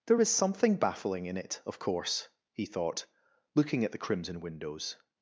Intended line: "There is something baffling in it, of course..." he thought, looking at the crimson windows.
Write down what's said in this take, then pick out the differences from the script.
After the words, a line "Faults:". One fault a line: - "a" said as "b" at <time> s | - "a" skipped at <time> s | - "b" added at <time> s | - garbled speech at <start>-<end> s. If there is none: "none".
"There is something baffling in it, of course..." he thought, looking at the crimson windows.
Faults:
none